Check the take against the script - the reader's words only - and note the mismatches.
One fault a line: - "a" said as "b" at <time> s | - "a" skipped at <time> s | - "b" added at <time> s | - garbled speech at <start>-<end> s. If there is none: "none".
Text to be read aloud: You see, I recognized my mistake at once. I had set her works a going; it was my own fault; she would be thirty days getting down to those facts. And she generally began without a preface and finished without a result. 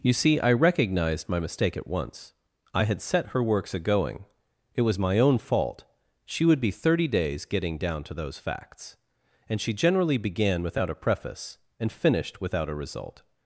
none